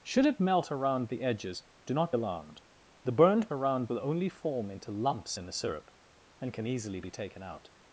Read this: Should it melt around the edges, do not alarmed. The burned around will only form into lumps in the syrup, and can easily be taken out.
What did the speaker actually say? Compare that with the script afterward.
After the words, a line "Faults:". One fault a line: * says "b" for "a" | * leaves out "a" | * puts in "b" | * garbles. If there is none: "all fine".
Should it melt around the edges, do not alarmed. The burned around will only form into lumps in the syrup, and can easily be taken out.
Faults:
all fine